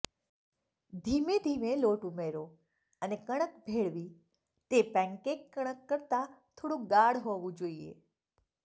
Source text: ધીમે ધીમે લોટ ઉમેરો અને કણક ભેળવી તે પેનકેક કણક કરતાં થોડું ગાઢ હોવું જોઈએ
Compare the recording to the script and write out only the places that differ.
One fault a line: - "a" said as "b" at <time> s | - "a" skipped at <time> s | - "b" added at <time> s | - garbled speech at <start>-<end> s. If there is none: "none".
none